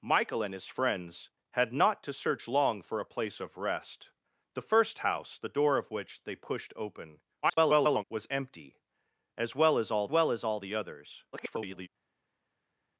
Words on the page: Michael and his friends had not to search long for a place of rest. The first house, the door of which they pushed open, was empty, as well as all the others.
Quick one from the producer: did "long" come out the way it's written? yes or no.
yes